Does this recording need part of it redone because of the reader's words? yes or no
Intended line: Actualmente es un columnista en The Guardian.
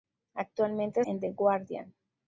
yes